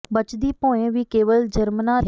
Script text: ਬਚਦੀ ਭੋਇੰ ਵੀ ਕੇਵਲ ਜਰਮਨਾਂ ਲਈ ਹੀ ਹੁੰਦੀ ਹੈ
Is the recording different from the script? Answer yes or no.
yes